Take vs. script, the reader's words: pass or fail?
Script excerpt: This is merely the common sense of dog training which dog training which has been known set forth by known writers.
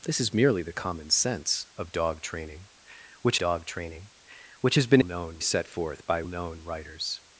pass